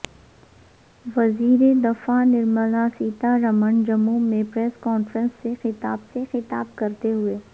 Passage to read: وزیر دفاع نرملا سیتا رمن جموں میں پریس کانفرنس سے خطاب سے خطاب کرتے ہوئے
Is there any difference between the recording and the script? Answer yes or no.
no